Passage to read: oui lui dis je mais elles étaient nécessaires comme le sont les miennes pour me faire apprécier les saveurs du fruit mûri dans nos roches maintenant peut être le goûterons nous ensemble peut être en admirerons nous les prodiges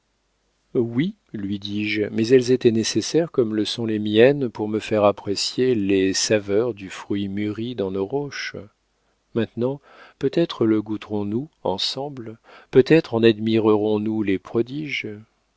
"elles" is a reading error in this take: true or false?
false